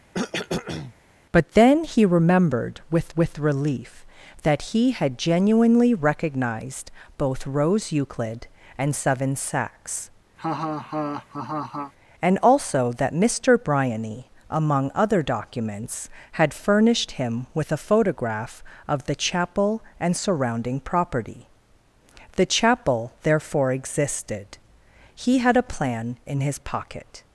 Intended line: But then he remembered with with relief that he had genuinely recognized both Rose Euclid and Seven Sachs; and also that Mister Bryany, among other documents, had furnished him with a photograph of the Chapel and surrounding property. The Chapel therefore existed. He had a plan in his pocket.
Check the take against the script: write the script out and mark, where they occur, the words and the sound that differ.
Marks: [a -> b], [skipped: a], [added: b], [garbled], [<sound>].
[cough] But then he remembered with with relief that he had genuinely recognized both Rose Euclid and Seven Sachs; [laugh] and also that Mister Bryany, among other documents, had furnished him with a photograph of the Chapel and surrounding property. The Chapel therefore existed. He had a plan in his pocket.